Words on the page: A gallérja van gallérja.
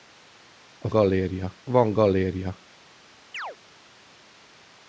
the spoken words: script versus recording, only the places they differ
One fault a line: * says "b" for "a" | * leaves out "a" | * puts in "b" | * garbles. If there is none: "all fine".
all fine